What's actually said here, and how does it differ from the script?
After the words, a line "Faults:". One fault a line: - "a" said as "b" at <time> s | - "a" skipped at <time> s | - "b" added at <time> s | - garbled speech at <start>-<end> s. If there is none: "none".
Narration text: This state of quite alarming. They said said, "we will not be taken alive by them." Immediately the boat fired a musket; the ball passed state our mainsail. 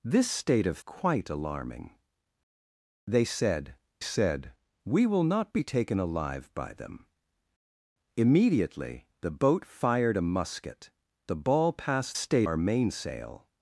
This state of quite alarming. They said said, "we will not be taken alive by them." Immediately the boat fired a musket; the ball passed state our mainsail.
Faults:
none